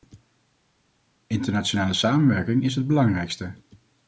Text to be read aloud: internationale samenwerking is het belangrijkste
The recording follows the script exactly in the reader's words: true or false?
true